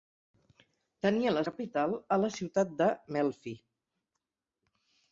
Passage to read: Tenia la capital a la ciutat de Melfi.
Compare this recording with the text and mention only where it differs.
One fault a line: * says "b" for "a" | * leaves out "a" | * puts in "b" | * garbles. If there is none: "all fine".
all fine